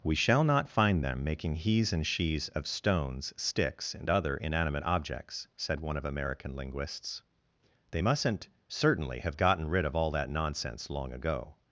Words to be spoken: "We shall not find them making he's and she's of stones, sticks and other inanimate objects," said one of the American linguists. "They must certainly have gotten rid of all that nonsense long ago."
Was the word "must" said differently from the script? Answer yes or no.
yes